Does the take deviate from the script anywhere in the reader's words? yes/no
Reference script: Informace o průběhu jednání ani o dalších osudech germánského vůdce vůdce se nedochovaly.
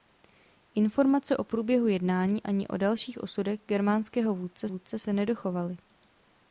no